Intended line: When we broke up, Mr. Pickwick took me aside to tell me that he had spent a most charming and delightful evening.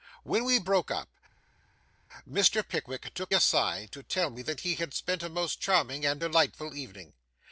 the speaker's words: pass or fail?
fail